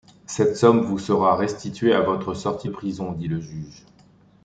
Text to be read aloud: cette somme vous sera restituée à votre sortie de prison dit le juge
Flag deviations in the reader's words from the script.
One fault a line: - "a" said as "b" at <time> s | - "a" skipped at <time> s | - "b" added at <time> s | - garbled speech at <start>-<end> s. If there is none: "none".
- "de" skipped at 2.7 s